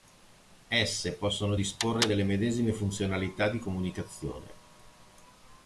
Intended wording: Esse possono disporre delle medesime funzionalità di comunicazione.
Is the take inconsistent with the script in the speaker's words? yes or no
no